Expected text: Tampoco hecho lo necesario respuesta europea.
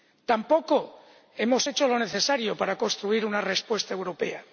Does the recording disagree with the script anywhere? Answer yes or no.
yes